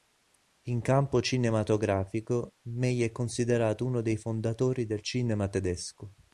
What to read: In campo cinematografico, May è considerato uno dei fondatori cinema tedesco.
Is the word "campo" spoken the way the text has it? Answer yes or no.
yes